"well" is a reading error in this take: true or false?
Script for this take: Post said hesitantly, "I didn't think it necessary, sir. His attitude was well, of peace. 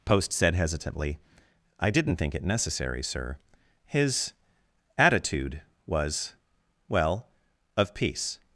false